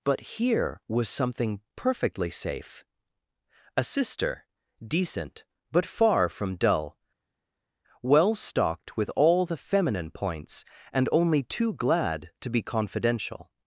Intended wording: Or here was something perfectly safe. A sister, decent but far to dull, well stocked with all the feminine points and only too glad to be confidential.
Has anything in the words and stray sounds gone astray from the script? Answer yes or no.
yes